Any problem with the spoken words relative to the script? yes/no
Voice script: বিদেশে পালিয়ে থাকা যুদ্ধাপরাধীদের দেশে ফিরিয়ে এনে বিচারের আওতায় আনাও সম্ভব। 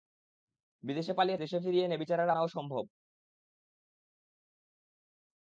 yes